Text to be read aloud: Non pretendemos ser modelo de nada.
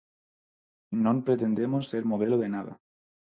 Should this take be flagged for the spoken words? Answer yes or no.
no